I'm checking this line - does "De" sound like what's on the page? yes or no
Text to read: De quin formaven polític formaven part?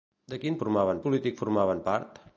yes